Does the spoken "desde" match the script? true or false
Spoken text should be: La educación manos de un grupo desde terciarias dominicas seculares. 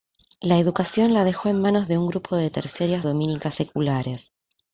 false